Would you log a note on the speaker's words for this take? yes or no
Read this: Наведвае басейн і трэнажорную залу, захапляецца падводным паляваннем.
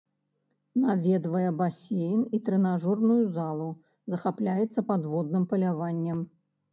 no